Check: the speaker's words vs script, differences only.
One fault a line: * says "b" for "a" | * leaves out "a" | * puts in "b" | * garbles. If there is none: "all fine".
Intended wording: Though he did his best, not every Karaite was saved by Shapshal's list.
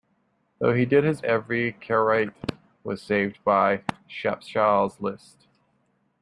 * leaves out "best not"